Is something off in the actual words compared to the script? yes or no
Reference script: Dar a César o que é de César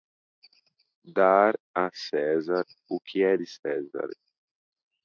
no